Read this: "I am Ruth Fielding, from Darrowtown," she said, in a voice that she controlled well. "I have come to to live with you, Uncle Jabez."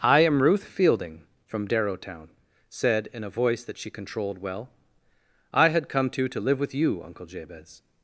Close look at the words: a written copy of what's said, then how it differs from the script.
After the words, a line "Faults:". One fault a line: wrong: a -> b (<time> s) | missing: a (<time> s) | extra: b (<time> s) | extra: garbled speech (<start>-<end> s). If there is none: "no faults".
"I am Ruth Fielding, from Darrowtown," said, in a voice that she controlled well. "I had come to to live with you, Uncle Jabez."
Faults:
missing: she (2.3 s)
wrong: have -> had (5.7 s)